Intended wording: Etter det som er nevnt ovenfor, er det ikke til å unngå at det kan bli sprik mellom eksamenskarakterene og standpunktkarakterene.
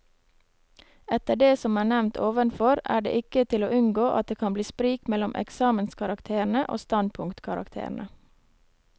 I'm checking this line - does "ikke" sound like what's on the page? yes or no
yes